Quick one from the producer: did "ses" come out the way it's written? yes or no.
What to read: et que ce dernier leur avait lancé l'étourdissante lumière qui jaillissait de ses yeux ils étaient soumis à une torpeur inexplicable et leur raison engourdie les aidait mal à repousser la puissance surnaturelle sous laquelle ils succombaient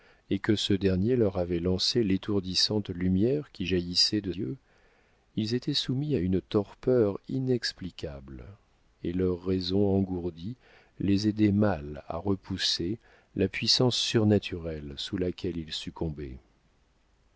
no